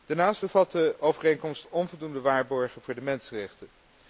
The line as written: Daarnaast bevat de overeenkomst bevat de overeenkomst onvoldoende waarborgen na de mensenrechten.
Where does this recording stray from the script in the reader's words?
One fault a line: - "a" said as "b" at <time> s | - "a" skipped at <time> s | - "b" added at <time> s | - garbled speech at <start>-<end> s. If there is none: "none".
- "bevat de overeenkomst" skipped at 1.7 s
- "na" said as "voor" at 2.8 s